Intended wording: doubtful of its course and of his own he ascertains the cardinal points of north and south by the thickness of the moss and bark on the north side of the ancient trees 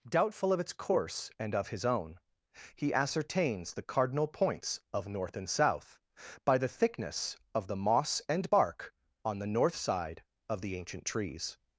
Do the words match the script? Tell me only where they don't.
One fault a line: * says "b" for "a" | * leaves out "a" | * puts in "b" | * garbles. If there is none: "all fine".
all fine